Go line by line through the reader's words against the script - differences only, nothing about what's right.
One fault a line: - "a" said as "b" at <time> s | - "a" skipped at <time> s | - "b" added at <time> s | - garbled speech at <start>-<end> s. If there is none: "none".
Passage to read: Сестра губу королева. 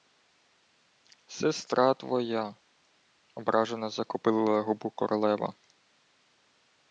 - "твоя ображено закопилила" added at 1.9 s